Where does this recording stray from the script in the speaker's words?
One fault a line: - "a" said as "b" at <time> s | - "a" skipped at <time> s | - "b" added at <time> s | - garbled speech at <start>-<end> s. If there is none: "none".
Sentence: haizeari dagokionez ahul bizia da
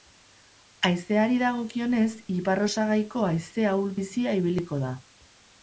- "ipar osagaiko haize" added at 2.4 s
- "ibiliko" added at 4.4 s